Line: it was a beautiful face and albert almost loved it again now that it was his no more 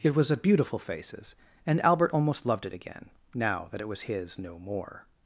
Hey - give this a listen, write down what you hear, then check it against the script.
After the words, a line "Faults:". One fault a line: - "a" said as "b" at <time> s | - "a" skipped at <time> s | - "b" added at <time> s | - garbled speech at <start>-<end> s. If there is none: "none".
it was a beautiful faces and albert almost loved it again now that it was his no more
Faults:
- "face" said as "faces" at 0.8 s